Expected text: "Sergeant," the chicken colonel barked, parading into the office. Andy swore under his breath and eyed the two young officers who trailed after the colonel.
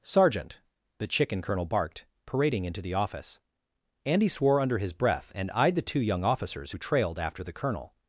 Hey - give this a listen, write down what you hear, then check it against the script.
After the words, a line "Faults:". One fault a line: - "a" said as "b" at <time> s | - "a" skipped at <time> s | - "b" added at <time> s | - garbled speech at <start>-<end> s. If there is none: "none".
"Sergeant," the chicken colonel barked, parading into the office. Andy swore under his breath and eyed the two young officers who trailed after the colonel.
Faults:
none